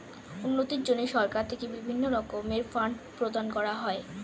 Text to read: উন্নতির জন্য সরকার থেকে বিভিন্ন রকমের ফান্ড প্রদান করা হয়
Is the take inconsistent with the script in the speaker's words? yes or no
no